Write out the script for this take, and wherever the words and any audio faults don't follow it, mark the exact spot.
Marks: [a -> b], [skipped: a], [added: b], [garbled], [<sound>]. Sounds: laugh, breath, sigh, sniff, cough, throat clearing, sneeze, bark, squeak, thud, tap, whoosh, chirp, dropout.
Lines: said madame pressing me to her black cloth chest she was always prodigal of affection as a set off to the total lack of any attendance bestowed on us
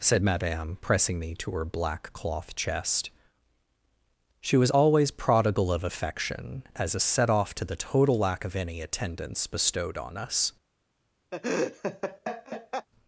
said madame pressing me to her black cloth chest she was always prodigal of affection as a set off to the total lack of any attendance bestowed on us [laugh]